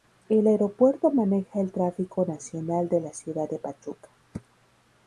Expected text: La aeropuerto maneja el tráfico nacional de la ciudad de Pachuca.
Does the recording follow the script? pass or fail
fail